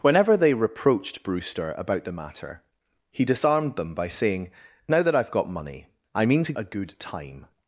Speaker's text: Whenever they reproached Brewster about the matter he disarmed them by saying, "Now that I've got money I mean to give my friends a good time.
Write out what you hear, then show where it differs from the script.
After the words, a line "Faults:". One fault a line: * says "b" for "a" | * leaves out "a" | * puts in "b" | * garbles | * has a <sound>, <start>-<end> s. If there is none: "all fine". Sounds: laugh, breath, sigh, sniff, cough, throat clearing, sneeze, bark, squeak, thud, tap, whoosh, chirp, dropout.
Whenever they reproached Brewster about the matter he disarmed them by saying, "Now that I've got money I mean to a good time.
Faults:
* leaves out "give my friends"